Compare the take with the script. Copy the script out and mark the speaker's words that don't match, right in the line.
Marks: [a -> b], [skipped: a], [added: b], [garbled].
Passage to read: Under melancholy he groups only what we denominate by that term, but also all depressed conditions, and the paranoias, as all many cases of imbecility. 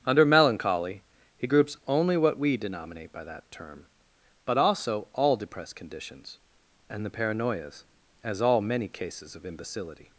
Under melancholy he groups only what we denominate by that term, but also all depressed conditions, and the paranoias, as all many cases of imbecility.